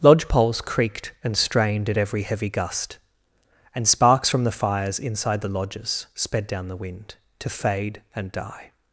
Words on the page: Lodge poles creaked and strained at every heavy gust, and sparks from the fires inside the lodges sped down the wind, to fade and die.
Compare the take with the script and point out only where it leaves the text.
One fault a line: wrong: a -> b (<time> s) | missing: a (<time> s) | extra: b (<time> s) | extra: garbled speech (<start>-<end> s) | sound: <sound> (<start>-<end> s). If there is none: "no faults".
no faults